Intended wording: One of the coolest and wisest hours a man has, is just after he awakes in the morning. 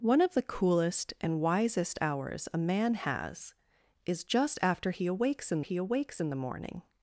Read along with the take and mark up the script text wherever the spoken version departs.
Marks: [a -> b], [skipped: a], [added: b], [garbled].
One of the coolest and wisest hours a man has, is just after he awakes in [added: he awakes in] the morning.